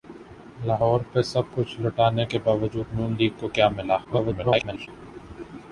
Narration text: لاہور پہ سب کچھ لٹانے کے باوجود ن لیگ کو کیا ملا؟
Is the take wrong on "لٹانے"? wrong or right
right